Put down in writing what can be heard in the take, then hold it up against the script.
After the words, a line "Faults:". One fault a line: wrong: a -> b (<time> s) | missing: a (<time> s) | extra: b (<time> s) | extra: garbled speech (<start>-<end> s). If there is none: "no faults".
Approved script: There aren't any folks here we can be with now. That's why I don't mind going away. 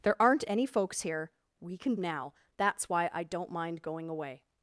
There aren't any folks here we can now. That's why I don't mind going away.
Faults:
missing: be with (2.0 s)